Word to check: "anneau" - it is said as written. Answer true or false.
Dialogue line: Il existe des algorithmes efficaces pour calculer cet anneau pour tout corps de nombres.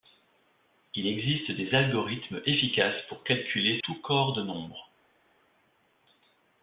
false